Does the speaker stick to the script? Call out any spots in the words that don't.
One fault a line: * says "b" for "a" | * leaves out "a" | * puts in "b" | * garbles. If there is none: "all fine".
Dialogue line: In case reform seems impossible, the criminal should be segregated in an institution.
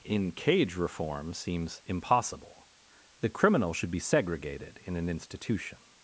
* says "cage" for "case"